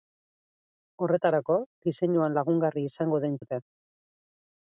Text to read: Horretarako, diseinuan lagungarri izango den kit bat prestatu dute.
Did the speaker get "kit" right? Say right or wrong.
wrong